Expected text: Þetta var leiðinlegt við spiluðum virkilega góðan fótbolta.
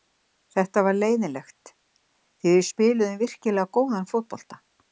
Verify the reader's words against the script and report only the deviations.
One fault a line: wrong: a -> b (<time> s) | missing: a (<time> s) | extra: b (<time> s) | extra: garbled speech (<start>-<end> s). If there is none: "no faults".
extra: því (1.7 s)